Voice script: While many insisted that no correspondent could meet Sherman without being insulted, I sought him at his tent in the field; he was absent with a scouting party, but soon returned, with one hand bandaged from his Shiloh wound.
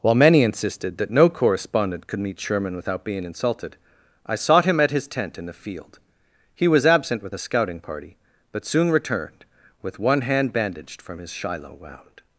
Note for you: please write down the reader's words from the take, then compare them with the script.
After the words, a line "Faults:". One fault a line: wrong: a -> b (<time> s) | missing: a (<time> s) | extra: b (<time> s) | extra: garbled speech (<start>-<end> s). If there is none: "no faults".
While many insisted that no correspondent could meet Sherman without being insulted, I sought him at his tent in the field; he was absent with a scouting party, but soon returned, with one hand bandaged from his Shiloh wound.
Faults:
no faults